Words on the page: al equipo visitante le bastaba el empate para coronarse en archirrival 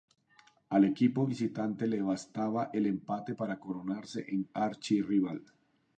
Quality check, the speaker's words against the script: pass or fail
pass